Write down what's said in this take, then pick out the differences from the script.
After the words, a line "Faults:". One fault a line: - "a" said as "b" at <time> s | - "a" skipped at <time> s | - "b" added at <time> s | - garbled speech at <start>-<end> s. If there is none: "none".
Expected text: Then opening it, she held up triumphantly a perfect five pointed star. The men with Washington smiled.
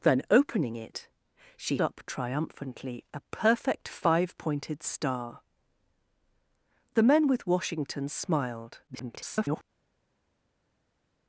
Then opening it, she up triumphantly a perfect five pointed star. The men with Washington smiled. [garbled]
Faults:
- "held" skipped at 1.8 s
- garbled speech at 8.9-9.6 s